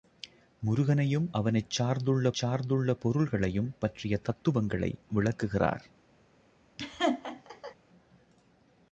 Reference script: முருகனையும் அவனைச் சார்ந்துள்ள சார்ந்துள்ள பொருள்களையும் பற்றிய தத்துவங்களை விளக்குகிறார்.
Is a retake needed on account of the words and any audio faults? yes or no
yes